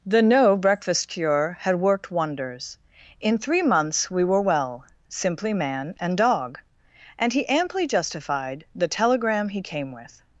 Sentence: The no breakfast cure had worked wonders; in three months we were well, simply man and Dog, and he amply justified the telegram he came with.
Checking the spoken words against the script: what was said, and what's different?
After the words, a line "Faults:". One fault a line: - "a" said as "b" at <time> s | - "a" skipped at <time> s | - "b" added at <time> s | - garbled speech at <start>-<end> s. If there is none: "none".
The no breakfast cure had worked wonders; in three months we were well, simply man and Dog, and he amply justified the telegram he came with.
Faults:
none